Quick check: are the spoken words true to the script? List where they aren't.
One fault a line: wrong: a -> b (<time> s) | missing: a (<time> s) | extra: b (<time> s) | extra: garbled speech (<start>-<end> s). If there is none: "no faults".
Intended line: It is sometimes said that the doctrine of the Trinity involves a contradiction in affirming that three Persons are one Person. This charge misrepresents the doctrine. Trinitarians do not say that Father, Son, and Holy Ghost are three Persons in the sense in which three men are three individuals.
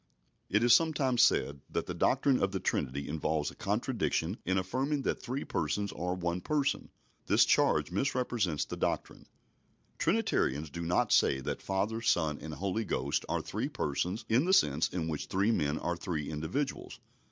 no faults